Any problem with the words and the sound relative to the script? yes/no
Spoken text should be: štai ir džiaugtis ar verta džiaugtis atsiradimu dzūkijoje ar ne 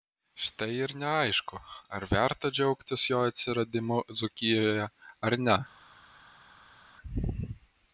yes